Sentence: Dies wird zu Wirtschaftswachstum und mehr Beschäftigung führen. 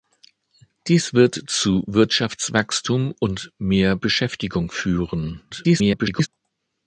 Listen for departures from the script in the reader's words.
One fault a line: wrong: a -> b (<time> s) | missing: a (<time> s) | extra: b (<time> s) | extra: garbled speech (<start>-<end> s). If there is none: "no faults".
extra: garbled speech (5.5-6.3 s)